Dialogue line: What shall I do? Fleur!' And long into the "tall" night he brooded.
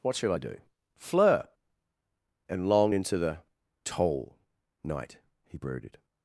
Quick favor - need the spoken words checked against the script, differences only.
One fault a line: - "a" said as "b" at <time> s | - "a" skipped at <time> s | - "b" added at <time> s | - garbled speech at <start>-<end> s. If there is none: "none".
none